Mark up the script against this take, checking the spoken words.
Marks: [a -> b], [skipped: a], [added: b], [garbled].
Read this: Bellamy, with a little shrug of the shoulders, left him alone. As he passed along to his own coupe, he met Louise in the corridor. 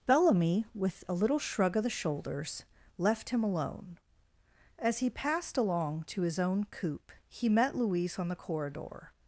Bellamy, with a little shrug of the shoulders, left him alone. As he passed along to his own coupe, he met Louise [in -> on] the corridor.